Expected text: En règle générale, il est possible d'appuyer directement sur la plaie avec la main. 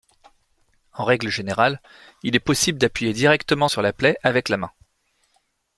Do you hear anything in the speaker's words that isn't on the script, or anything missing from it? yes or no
no